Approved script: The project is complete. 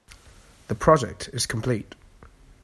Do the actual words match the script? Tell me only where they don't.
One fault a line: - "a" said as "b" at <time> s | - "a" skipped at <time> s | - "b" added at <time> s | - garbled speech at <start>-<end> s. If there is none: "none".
none